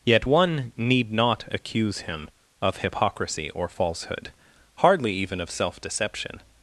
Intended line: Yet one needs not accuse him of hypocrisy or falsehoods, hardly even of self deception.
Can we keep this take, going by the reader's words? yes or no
no